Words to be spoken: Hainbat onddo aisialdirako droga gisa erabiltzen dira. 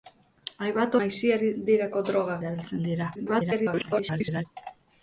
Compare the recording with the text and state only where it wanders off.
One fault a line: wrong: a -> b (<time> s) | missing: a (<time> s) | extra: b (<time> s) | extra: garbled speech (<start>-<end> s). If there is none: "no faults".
missing: onddo (0.9 s)
missing: gisa (2.4 s)
extra: garbled speech (3.1-4.5 s)